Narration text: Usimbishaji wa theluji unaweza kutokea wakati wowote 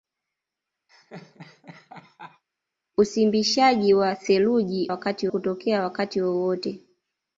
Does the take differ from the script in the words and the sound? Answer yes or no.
yes